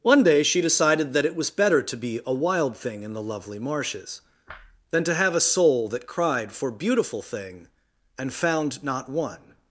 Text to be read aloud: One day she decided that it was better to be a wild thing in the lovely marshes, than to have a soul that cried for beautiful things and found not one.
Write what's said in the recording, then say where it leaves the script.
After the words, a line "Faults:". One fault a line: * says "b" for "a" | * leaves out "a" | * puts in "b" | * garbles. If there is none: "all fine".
One day she decided that it was better to be a wild thing in the lovely marshes, than to have a soul that cried for beautiful thing and found not one.
Faults:
* says "thing" for "things"